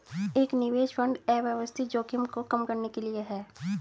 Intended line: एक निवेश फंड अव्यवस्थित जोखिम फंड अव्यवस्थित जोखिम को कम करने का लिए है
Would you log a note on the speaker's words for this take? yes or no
yes